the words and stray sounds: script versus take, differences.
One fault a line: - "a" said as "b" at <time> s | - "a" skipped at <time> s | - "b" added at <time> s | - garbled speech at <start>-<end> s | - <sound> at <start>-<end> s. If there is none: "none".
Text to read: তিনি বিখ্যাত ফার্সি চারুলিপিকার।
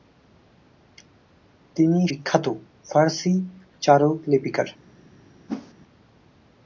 - whoosh at 5.5-5.7 s